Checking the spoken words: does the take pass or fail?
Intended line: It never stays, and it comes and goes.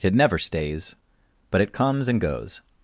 fail